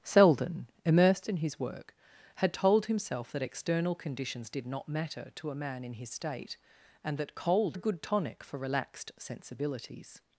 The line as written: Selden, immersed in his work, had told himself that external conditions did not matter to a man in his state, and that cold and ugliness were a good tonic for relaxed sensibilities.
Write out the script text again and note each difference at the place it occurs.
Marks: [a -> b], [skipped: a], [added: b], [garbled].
Selden, immersed in his work, had told himself that external conditions did not matter to a man in his state, and that cold [skipped: and ugliness were] a good tonic for relaxed sensibilities.